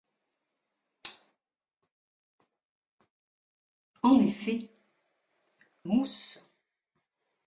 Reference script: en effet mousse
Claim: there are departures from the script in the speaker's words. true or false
false